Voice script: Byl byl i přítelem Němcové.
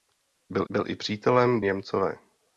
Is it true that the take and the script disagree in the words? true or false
false